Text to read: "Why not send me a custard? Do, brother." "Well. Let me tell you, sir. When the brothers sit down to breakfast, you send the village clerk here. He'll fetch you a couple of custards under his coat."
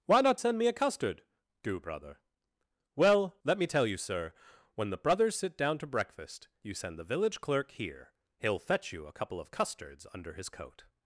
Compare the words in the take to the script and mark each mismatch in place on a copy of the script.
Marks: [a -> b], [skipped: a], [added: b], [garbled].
"Why not send me a custard? Do, brother." "Well. Let me tell you, sir. When the brothers sit down to breakfast, you send the village clerk here. He'll fetch you a couple of custards under his coat."